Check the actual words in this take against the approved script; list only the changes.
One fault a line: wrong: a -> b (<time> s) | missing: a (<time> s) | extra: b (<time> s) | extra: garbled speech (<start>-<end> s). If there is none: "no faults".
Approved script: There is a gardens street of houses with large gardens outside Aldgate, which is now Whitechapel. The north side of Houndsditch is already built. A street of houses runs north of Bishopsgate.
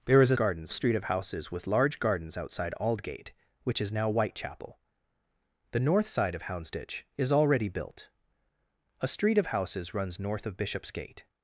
no faults